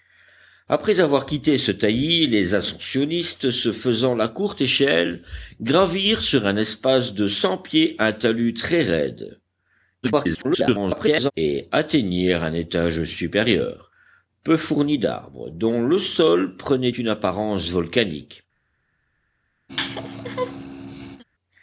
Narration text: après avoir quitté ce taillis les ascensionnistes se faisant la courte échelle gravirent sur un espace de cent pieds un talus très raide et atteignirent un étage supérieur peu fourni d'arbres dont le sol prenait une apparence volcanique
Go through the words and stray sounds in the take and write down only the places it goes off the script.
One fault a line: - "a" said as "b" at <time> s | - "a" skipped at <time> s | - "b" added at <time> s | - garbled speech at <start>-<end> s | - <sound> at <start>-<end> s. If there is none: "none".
- garbled speech at 10.0-11.3 s
- laugh at 19.7-21.2 s